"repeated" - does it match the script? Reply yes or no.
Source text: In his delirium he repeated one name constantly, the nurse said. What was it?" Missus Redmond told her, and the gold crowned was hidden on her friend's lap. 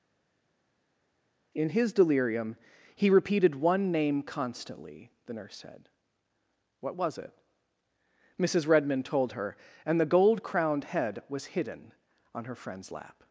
yes